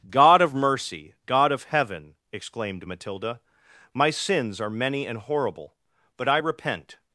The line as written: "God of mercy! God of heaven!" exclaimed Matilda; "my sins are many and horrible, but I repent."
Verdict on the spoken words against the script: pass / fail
pass